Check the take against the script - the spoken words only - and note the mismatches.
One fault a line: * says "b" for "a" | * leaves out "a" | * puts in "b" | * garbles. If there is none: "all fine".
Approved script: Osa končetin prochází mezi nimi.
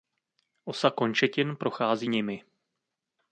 * leaves out "mezi"